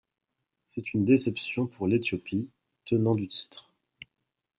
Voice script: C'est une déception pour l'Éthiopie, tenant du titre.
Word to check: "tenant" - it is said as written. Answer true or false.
true